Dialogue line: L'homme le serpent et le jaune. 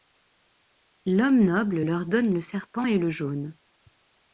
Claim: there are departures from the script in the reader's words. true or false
true